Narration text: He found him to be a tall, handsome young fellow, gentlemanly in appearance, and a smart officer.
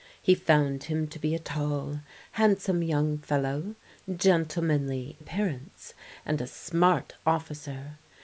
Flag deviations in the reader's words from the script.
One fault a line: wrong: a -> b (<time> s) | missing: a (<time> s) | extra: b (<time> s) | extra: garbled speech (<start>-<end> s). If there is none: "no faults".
missing: in (5.2 s)